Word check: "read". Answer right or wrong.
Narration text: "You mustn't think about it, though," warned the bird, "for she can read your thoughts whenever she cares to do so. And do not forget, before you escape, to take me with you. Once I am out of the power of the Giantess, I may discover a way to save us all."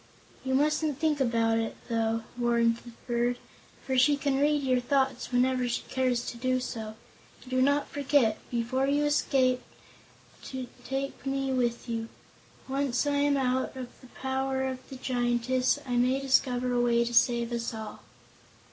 right